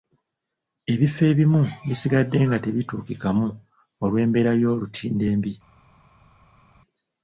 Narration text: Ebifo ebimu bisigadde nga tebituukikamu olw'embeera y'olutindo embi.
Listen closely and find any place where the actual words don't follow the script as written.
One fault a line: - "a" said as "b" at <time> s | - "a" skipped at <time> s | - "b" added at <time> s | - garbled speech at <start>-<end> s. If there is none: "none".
none